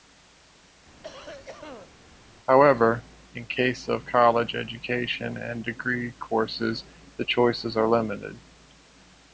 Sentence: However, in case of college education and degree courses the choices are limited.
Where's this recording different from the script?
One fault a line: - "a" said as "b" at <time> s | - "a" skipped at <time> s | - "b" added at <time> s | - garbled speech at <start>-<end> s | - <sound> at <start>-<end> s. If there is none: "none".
- cough at 1.0-1.9 s